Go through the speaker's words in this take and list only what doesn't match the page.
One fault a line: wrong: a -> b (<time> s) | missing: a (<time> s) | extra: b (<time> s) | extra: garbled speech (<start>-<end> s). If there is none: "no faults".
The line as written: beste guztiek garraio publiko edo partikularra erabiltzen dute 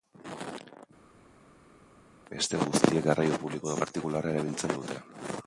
no faults